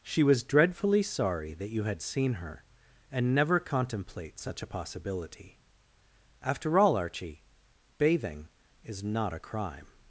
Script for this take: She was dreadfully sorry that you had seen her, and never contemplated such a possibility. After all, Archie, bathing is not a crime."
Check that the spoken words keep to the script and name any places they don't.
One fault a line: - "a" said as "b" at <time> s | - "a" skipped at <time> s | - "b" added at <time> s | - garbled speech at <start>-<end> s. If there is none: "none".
- "contemplated" said as "contemplate" at 3.6 s